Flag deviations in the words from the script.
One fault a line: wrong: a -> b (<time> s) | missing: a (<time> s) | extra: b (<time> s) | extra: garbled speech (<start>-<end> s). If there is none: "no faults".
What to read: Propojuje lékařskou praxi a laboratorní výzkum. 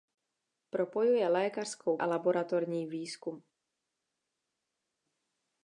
missing: praxi (2.0 s)